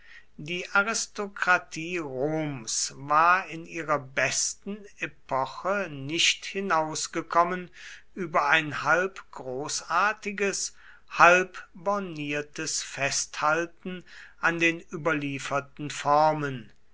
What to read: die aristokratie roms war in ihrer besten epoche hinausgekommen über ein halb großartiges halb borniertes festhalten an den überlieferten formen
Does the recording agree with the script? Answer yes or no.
no